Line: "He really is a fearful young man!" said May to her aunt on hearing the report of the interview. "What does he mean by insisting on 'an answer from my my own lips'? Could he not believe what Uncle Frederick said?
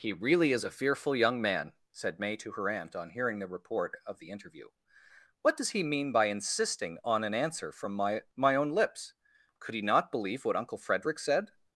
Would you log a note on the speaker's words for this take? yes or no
no